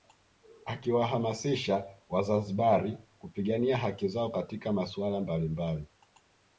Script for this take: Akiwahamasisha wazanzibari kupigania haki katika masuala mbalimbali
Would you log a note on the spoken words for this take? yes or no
yes